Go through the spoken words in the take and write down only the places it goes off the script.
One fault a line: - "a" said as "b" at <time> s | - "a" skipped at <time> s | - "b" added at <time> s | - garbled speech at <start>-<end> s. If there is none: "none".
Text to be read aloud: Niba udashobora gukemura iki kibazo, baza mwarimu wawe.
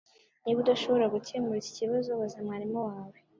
none